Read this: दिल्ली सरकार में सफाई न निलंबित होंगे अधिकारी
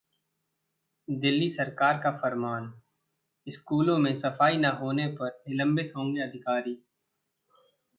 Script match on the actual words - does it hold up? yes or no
no